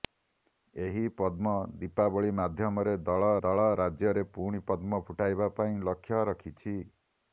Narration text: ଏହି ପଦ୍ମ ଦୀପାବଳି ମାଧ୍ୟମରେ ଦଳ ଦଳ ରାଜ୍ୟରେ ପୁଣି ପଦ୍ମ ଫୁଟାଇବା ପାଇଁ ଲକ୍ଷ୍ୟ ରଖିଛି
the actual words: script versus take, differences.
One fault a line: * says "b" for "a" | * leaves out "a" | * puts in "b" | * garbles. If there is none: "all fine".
all fine